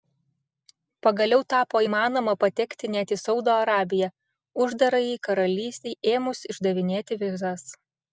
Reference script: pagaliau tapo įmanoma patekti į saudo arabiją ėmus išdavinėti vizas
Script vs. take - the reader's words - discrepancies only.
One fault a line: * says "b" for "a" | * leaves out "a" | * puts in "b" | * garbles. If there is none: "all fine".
* puts in "net"
* puts in "uždarajai karalystei"